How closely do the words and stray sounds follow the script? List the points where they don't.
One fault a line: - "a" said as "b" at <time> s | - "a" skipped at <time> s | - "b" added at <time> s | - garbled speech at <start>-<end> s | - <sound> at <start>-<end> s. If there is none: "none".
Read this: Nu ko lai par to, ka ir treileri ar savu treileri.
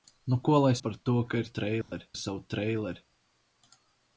- dropout at 1.8-1.9 s